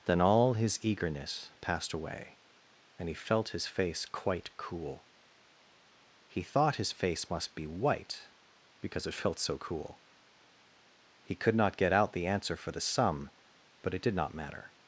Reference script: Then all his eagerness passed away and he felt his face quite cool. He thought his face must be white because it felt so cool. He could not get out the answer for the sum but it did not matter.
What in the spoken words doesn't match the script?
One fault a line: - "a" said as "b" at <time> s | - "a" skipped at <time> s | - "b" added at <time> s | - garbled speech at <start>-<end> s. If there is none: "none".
none